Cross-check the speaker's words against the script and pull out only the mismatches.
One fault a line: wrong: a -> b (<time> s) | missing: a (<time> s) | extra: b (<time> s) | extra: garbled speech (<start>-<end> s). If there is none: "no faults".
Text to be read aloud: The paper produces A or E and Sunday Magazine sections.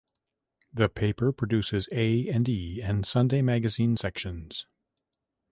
wrong: or -> and (2.3 s)